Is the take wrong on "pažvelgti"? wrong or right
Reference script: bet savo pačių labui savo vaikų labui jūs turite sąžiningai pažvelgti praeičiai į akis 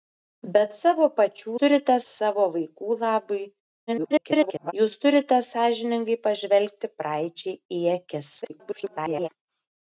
right